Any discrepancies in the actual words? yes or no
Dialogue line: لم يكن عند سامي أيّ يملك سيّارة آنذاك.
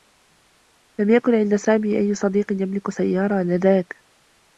yes